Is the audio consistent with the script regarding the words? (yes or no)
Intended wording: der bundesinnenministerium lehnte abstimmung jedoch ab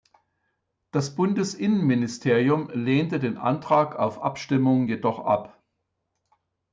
no